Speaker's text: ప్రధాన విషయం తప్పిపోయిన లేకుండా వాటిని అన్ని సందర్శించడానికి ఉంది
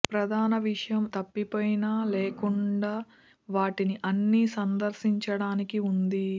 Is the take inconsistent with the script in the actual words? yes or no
no